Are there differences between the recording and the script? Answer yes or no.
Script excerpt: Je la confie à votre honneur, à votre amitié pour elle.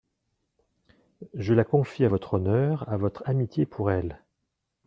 no